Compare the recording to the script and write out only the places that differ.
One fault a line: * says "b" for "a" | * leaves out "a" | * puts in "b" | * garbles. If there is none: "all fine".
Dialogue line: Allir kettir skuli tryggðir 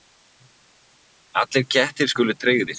all fine